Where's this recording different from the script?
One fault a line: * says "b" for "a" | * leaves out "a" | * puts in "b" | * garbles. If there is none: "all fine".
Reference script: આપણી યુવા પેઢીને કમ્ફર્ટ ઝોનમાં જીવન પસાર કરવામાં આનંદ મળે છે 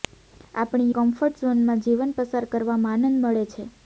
* leaves out "યુવા પેઢીને"